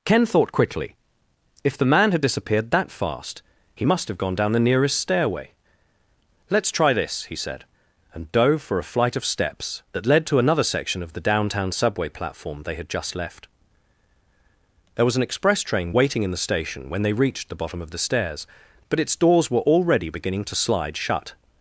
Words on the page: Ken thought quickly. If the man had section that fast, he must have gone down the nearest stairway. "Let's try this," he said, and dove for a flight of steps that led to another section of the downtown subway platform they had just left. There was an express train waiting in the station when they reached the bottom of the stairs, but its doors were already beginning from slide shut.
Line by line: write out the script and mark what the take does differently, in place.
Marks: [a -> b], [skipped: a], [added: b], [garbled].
Ken thought quickly. If the man had [section -> disappeared] that fast, he must have gone down the nearest stairway. "Let's try this," he said, and dove for a flight of steps that led to another section of the downtown subway platform they had just left. There was an express train waiting in the station when they reached the bottom of the stairs, but its doors were already beginning [from -> to] slide shut.